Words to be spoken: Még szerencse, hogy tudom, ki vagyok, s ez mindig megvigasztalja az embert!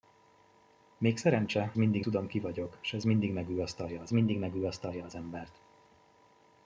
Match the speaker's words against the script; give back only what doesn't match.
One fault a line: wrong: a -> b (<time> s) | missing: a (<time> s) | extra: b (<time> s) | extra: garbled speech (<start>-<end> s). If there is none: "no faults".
wrong: hogy -> mindig (1.8 s)
extra: mindig megvigasztalja az (4.1 s)